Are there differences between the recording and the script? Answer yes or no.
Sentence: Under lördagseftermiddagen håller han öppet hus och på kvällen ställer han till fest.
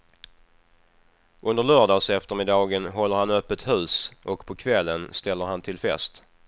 no